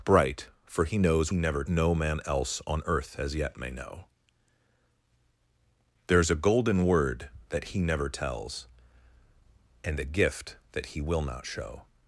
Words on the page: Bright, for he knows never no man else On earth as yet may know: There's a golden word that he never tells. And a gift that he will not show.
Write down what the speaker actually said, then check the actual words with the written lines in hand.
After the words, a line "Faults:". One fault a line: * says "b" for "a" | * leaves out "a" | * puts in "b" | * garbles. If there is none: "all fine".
Bright, for he knows never no man else On earth as yet may know: There's a golden word that he never tells. And a gift that he will not show.
Faults:
all fine